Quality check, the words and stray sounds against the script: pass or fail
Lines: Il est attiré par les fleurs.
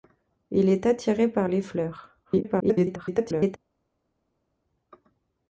fail